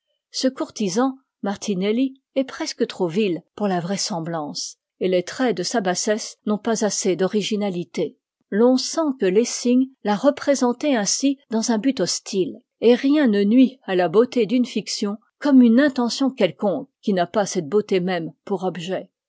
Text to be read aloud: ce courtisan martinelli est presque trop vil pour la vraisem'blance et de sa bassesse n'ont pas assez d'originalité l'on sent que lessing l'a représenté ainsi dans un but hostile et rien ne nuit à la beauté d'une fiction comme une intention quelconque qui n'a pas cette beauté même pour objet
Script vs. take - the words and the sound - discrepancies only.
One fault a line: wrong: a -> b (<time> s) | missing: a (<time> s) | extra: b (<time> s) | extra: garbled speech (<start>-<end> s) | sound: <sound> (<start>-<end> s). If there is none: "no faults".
extra: les traits (5.1 s)